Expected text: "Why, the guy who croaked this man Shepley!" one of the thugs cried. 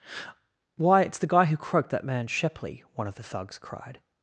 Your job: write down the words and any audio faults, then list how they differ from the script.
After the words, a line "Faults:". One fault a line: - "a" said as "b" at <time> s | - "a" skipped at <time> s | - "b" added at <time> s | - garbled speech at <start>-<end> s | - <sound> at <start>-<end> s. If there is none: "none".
"Why, it's the guy who croaked that man Shepley!" one of the thugs cried.
Faults:
- "it's" added at 1.0 s
- "this" said as "that" at 1.9 s